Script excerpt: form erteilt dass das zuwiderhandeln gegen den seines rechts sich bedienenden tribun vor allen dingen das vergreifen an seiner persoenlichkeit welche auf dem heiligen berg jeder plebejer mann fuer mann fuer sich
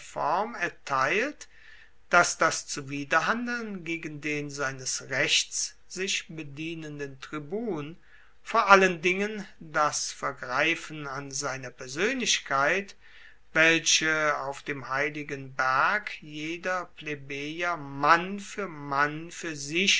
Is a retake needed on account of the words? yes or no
no